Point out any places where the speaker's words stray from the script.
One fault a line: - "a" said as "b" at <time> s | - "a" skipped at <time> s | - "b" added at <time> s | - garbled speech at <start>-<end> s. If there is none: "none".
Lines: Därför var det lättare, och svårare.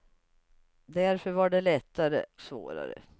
- "och" skipped at 2.2 s